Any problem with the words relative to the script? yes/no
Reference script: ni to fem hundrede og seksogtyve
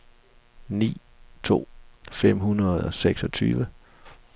no